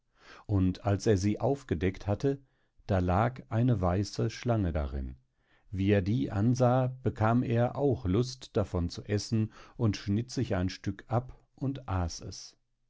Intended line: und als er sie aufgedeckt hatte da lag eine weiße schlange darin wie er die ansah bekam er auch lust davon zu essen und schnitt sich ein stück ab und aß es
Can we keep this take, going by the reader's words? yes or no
yes